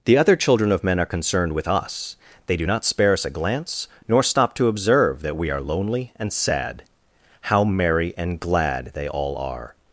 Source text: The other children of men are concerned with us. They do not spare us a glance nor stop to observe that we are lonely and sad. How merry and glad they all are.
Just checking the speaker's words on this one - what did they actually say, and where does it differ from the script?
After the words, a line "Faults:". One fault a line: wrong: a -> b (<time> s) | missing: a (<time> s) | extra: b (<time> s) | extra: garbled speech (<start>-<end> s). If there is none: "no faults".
The other children of men are concerned with us. They do not spare us a glance nor stop to observe that we are lonely and sad. How merry and glad they all are.
Faults:
no faults